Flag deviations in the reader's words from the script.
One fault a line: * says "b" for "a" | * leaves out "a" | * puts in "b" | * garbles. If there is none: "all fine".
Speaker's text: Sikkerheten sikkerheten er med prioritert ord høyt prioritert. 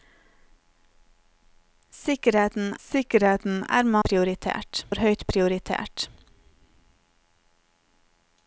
all fine